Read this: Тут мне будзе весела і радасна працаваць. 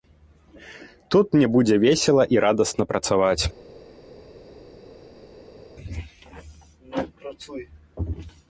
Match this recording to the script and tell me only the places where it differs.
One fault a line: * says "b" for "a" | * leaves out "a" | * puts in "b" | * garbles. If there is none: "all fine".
all fine